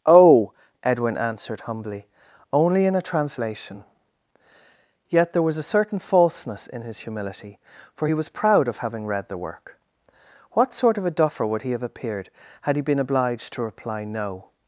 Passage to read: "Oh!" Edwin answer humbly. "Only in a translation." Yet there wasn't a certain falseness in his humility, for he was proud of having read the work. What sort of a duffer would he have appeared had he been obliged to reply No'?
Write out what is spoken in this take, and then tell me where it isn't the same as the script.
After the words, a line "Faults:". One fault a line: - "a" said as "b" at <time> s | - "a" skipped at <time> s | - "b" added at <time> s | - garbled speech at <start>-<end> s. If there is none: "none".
"Oh!" Edwin answered humbly. "Only in a translation." Yet there was a certain falseness in his humility, for he was proud of having read the work. What sort of a duffer would he have appeared had he been obliged to reply No'?
Faults:
- "answer" said as "answered" at 1.1 s
- "wasn't" said as "was" at 5.4 s